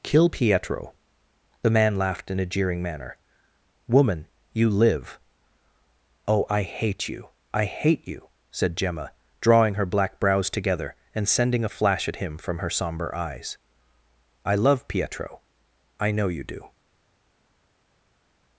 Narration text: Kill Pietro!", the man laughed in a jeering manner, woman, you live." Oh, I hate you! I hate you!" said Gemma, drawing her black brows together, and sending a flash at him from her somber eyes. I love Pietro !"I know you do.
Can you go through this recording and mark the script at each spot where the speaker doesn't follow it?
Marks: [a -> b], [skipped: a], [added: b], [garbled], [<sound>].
Kill Pietro!", the man laughed in a jeering manner, woman, you live." Oh, I hate you! I hate you!" said Gemma, drawing her black brows together, and sending a flash at him from her somber eyes. I love Pietro !"I know you do.